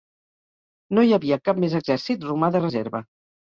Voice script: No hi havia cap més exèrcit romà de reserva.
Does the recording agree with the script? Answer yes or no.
yes